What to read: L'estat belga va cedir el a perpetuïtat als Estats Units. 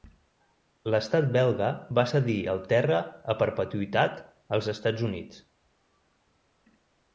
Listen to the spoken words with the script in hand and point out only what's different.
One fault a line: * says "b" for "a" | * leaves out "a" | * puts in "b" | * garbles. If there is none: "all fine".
* puts in "terra"